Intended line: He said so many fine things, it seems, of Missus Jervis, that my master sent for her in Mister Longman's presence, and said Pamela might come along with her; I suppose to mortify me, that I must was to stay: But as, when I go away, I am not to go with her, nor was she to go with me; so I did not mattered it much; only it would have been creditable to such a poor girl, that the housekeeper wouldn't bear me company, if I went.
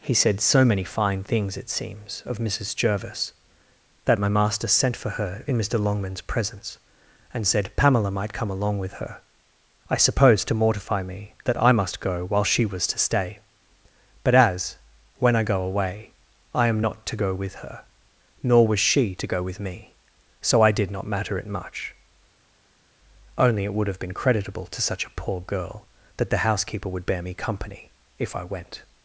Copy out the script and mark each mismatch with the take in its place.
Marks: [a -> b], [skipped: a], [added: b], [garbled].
He said so many fine things, it seems, of Missus Jervis, that my master sent for her in Mister Longman's presence, and said Pamela might come along with her; I suppose to mortify me, that I must [added: go while she] was to stay: But as, when I go away, I am not to go with her, nor was she to go with me; so I did not [mattered -> matter] it much; only it would have been creditable to such a poor girl, that the housekeeper [wouldn't -> would] bear me company, if I went.